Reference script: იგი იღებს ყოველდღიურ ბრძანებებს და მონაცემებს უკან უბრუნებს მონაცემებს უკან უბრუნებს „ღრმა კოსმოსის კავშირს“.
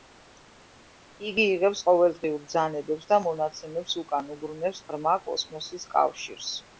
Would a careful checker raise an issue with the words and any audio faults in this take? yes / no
yes